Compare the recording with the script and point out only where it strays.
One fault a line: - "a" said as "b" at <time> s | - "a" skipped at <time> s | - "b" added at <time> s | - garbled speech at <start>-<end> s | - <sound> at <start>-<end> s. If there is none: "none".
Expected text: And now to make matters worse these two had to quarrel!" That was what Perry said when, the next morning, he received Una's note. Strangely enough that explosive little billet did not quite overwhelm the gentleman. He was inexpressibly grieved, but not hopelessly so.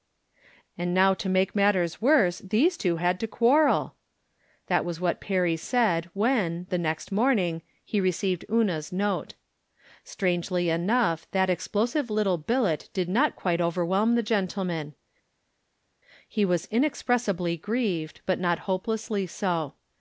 none